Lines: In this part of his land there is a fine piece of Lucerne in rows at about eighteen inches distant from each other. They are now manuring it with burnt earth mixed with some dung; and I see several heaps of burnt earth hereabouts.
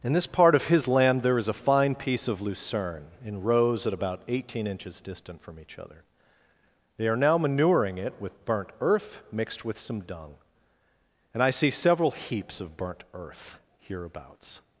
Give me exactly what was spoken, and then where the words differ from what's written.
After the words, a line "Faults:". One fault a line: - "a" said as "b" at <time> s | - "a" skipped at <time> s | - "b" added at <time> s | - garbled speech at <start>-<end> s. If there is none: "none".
In this part of his land there is a fine piece of Lucerne in rows at about eighteen inches distant from each other. They are now manuring it with burnt earth mixed with some dung; and I see several heaps of burnt earth hereabouts.
Faults:
none